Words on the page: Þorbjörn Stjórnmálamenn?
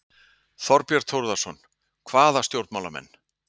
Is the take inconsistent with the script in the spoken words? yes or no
yes